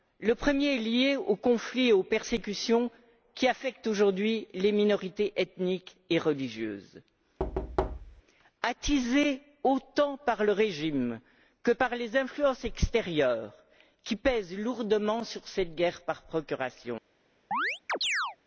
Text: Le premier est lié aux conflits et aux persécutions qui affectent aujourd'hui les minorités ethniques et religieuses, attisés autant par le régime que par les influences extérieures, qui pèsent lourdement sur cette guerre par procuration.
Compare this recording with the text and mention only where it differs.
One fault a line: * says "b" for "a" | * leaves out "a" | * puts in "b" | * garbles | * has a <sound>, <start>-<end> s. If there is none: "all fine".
* has a thud, 7.4-8.2 s
* has a chirp, 17.5-18.4 s